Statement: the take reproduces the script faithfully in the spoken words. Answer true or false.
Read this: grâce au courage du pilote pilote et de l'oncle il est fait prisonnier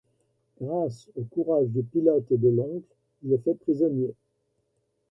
false